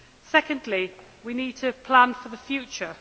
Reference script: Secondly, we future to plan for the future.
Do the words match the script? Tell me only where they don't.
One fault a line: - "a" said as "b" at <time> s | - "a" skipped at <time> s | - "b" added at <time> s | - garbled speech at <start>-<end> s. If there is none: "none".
- "future" said as "need" at 1.3 s